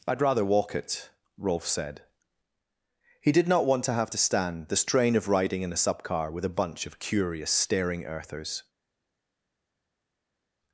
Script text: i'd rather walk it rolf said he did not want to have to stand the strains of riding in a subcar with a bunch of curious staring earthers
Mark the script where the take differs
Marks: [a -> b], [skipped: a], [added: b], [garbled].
i'd rather walk it rolf said he did not want to have to stand the [strains -> strain] of riding in a subcar with a bunch of curious staring earthers